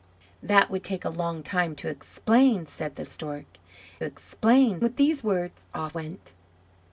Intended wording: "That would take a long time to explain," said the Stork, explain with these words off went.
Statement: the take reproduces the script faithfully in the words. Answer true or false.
true